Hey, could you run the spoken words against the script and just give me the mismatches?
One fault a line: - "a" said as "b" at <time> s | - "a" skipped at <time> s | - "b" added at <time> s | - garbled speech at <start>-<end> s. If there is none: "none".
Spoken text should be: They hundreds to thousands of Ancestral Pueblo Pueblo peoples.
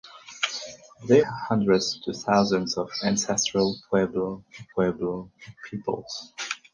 none